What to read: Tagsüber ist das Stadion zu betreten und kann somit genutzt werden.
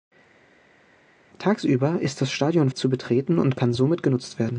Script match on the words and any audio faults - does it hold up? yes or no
yes